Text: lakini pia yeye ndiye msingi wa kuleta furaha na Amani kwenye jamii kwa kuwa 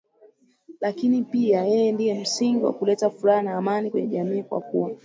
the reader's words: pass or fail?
pass